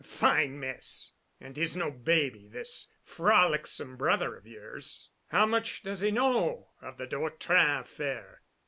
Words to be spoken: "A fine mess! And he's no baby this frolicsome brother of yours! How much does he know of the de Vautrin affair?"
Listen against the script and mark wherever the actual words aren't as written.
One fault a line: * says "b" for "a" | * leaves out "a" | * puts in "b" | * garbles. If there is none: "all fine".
all fine